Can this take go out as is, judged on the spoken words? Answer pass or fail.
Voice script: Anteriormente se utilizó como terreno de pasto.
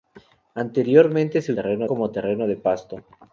fail